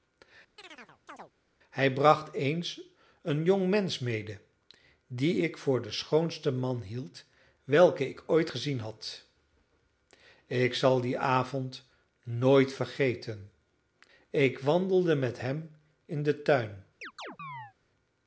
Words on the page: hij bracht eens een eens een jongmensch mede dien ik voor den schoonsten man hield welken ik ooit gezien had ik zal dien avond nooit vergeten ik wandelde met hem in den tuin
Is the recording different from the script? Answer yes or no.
yes